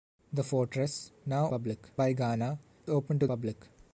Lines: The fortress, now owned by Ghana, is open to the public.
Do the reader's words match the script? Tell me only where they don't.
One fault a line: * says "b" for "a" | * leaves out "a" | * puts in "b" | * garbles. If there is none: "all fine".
* says "public" for "owned"
* leaves out "is"
* leaves out "the"